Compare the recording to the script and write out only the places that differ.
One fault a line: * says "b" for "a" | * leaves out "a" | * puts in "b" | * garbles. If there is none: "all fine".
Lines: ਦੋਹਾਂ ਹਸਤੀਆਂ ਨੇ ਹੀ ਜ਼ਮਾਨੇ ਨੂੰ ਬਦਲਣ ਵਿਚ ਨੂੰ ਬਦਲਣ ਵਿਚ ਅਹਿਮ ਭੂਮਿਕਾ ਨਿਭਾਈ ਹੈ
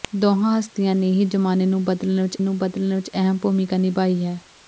all fine